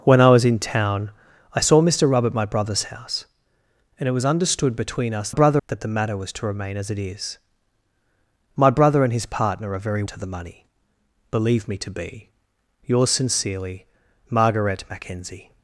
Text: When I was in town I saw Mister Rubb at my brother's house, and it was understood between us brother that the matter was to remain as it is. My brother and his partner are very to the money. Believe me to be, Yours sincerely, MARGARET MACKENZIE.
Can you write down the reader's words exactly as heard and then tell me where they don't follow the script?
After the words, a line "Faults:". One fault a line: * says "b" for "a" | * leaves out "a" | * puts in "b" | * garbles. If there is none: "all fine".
When I was in town I saw Mister Rubb at my brother's house, and it was understood between us brother that the matter was to remain as it is. My brother and his partner are very to the money. Believe me to be, Yours sincerely, MARGARET MACKENZIE.
Faults:
all fine